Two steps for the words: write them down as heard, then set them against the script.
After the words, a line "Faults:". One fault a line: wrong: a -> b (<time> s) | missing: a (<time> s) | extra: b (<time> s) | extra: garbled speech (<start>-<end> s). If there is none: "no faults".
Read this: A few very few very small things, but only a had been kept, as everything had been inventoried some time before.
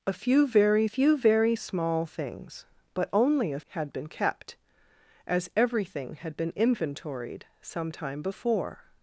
A few very few very small things, but only a had been kept, as everything had been inventoried some time before.
Faults:
no faults